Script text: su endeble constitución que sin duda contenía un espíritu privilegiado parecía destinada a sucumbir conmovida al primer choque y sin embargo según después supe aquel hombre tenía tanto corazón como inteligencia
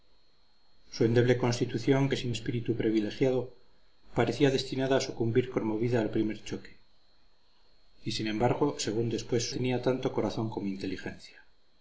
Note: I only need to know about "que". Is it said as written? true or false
true